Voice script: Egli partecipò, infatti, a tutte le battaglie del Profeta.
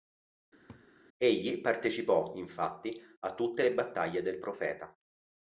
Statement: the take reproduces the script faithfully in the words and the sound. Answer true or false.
false